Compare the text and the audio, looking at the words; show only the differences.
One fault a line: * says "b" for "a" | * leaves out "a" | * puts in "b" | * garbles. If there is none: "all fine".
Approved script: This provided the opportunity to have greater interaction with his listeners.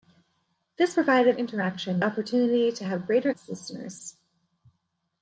* says "interaction" for "the"
* leaves out "interaction with"